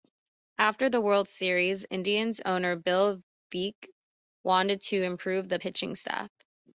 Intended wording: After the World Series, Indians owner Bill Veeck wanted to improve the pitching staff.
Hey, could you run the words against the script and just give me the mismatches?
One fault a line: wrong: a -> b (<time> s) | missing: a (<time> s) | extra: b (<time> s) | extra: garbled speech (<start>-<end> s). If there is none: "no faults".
no faults